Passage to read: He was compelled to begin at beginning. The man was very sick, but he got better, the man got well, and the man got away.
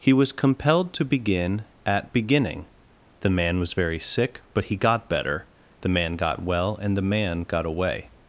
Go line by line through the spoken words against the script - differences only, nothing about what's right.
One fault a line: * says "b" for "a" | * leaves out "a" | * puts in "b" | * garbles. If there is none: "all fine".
all fine